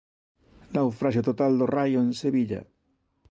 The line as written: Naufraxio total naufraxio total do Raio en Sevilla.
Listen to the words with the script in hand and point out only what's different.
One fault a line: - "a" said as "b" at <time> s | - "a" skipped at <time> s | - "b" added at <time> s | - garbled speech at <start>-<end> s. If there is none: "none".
- "naufraxio total" skipped at 1.5 s